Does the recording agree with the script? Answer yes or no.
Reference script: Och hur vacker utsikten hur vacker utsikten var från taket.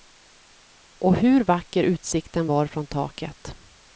no